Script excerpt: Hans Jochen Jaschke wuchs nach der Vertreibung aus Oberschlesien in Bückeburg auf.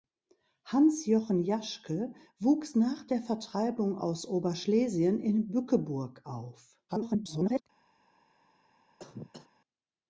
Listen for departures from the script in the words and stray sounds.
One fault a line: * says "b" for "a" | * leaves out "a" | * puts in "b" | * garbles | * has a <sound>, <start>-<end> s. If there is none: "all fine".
* garbles
* has a cough, 9.0-9.5 s